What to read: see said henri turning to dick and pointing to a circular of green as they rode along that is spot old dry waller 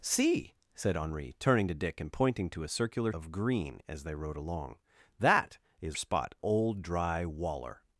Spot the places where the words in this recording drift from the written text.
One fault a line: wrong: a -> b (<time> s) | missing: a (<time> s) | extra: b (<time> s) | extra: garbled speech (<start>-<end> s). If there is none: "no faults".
no faults